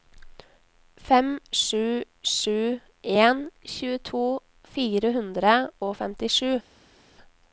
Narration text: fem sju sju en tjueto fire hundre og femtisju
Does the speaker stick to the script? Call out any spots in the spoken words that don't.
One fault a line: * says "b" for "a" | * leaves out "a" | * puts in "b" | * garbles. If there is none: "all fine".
all fine